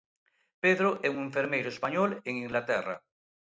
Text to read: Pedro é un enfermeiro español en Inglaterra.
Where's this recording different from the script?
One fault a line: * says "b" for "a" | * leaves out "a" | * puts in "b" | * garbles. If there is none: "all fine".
all fine